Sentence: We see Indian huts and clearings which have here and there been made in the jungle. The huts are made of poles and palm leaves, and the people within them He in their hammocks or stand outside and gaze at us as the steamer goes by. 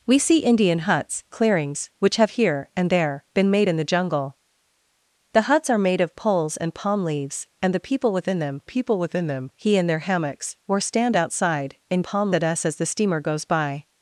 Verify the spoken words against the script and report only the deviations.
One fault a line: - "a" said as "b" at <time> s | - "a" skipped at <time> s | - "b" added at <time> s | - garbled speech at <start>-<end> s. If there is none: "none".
- "and" skipped at 1.2 s
- "people within them" added at 8.6 s
- "gaze" said as "palm" at 12.0 s